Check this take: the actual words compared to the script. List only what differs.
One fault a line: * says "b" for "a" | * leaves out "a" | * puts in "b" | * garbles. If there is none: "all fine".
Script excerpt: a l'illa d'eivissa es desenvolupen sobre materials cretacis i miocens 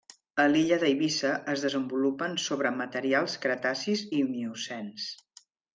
all fine